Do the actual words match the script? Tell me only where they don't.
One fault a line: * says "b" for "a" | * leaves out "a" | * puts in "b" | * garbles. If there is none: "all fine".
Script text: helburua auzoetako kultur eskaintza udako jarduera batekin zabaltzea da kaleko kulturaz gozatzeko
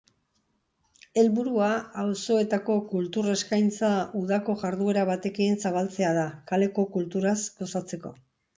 all fine